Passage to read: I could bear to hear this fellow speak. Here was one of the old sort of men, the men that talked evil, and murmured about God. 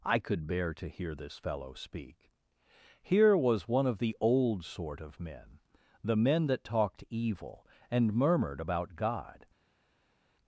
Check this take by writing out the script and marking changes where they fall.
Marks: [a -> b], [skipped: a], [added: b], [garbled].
I could bear to hear this fellow speak. Here was one of the old sort of men, the men that talked evil, and murmured about God.